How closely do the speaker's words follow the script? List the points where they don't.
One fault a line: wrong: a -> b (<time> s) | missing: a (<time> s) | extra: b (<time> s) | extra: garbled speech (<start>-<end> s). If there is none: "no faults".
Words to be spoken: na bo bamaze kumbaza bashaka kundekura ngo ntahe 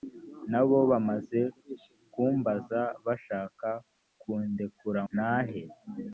missing: ngo (5.0 s)